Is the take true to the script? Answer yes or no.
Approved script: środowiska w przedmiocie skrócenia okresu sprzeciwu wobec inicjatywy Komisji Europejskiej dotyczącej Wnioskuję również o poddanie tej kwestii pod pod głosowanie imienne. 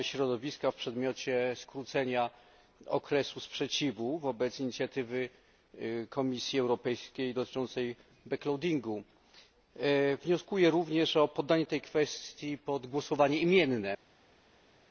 no